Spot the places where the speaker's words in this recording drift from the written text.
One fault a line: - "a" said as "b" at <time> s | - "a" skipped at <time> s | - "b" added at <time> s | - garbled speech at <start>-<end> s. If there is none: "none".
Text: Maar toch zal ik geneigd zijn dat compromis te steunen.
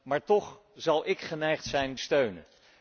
- "dat compromis te" skipped at 1.9 s